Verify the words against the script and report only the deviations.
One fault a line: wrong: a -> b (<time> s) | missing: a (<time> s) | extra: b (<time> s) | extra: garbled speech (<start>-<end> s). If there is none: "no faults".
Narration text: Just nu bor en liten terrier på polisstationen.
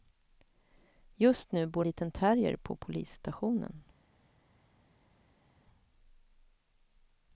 missing: en (1.9 s)